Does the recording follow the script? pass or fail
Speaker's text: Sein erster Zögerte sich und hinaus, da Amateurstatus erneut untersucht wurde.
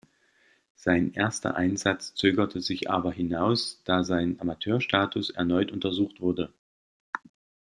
fail